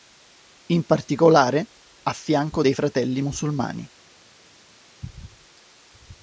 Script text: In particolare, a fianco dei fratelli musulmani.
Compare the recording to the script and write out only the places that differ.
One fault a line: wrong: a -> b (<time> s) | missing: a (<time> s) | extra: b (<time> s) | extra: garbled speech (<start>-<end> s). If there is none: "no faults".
no faults